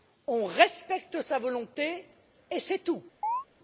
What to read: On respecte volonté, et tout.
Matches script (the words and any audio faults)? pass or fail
fail